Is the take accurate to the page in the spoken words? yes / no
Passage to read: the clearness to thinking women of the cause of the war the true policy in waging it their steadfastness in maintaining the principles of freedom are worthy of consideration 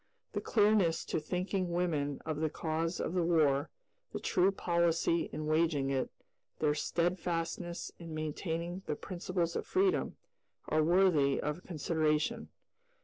yes